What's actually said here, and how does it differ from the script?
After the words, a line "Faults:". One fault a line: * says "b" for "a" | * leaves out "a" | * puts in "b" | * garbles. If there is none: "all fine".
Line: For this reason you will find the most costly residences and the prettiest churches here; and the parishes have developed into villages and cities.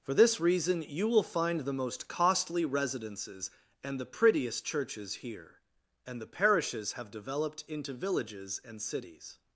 For this reason you will find the most costly residences and the prettiest churches here; and the parishes have developed into villages and cities.
Faults:
all fine